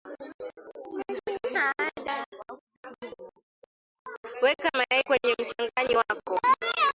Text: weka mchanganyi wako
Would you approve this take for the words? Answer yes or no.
no